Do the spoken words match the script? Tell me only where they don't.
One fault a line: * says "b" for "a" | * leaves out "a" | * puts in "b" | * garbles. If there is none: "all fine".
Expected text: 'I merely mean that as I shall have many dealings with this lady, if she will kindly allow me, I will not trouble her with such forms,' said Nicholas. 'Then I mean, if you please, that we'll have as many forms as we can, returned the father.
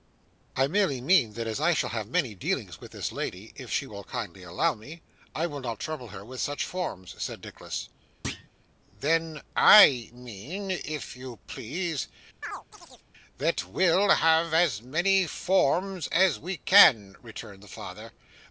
all fine